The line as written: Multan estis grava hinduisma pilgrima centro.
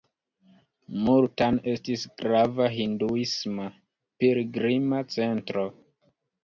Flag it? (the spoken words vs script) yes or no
no